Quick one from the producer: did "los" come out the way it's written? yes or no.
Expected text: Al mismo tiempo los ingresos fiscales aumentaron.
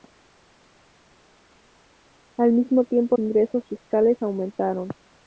no